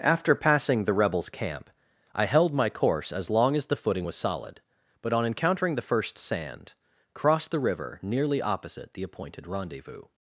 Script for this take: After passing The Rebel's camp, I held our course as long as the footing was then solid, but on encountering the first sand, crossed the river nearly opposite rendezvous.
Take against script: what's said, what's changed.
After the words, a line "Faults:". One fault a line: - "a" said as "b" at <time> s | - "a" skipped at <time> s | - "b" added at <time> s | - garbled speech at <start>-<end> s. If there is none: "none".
After passing The Rebel's camp, I held my course as long as the footing was solid, but on encountering the first sand, crossed the river nearly opposite the appointed rendezvous.
Faults:
- "our" said as "my" at 2.5 s
- "then" skipped at 4.2 s
- "the appointed" added at 8.9 s